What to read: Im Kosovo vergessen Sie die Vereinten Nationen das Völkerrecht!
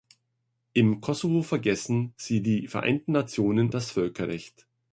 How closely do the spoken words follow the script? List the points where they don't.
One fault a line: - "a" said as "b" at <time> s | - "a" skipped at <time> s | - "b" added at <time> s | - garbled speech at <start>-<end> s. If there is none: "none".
none